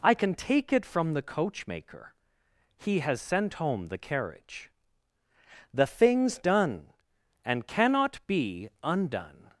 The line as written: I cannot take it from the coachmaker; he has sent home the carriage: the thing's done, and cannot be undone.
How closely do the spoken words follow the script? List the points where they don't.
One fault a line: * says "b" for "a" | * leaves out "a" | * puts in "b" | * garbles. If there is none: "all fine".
* says "can" for "cannot"